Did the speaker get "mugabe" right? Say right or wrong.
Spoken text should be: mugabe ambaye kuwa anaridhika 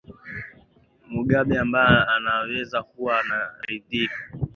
right